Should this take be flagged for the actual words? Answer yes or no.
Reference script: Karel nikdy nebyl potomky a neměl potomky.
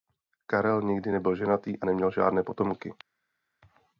yes